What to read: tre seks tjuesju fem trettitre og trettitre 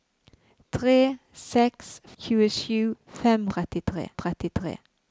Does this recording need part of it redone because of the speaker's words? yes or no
no